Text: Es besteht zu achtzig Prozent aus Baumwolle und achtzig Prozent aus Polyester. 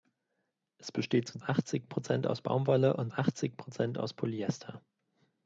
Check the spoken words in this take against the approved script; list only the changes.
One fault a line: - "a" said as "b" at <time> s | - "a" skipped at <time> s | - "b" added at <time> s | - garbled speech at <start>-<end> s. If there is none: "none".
none